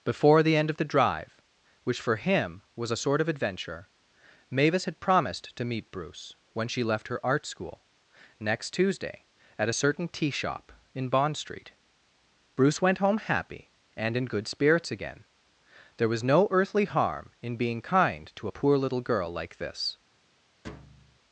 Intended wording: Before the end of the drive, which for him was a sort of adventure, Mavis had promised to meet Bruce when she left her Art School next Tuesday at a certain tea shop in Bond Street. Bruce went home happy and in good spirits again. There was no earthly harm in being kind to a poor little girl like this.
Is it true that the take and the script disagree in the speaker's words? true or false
false